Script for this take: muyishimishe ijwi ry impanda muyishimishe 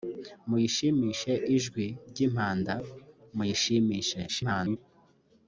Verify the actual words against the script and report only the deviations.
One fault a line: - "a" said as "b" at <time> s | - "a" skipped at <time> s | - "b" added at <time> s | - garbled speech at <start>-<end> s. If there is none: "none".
- garbled speech at 4.3-4.8 s